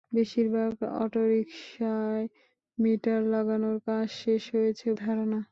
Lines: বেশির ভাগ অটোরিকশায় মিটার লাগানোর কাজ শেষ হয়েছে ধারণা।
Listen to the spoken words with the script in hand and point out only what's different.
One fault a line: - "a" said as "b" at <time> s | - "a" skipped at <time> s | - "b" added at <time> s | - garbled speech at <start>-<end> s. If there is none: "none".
none